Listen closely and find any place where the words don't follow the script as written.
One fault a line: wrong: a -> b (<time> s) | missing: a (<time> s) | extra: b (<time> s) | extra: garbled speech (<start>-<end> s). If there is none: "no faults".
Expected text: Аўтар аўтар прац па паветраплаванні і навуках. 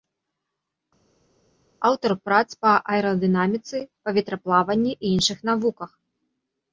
missing: аўтар (2.1 s)
extra: аэрадынаміцы (3.0 s)
extra: іншых (5.2 s)